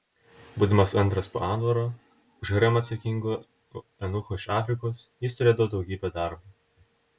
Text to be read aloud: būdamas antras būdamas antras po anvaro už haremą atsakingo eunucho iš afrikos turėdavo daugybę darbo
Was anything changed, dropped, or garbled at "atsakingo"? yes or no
no